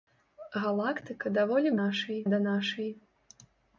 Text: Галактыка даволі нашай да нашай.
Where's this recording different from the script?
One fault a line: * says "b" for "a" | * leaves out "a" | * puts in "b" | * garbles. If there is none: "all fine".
all fine